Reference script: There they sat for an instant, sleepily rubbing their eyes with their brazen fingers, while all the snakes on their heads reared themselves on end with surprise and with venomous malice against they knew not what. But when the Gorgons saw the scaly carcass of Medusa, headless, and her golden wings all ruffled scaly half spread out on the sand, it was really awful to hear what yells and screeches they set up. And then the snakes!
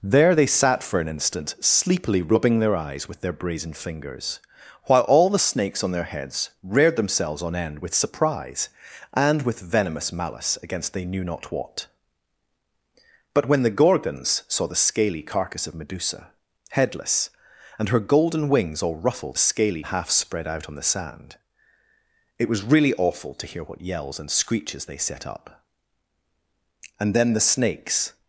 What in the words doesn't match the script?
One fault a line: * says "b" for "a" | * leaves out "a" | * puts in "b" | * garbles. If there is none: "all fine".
all fine